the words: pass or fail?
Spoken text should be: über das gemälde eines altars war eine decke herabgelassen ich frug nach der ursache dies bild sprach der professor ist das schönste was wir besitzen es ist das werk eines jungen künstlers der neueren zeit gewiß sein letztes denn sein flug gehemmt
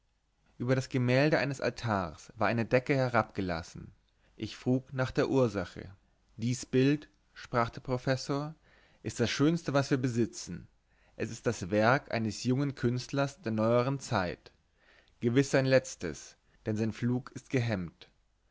fail